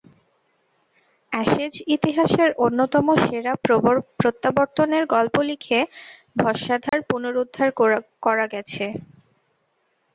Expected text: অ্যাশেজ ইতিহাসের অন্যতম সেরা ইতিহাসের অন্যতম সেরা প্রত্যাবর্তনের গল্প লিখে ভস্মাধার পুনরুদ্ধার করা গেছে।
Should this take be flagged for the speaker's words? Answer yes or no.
yes